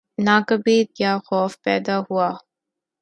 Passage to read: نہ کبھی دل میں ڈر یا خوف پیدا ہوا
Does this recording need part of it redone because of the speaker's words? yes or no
yes